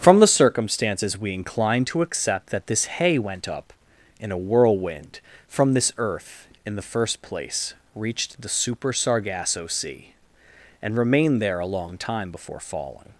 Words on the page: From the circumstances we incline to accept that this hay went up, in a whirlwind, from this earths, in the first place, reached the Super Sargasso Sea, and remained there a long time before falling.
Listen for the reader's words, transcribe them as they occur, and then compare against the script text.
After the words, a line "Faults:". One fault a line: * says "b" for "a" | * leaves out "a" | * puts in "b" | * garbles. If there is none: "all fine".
From the circumstances we incline to accept that this hay went up, in a whirlwind, from this earth, in the first place, reached the Super Sargasso Sea, and remained there a long time before falling.
Faults:
* says "earth" for "earths"